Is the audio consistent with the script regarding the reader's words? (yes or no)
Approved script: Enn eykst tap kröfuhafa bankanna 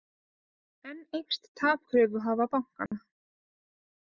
yes